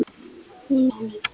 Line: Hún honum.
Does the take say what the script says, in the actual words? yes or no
yes